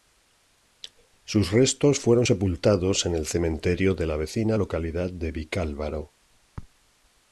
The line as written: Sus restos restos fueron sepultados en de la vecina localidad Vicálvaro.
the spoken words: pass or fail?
fail